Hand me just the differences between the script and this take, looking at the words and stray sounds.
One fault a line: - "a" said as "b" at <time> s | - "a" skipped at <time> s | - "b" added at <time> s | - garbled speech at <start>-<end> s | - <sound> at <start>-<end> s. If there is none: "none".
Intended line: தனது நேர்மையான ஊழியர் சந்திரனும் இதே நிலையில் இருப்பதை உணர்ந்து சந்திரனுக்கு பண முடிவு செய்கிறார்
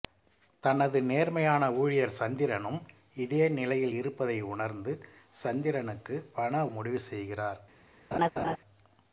- laugh at 8.1-8.6 s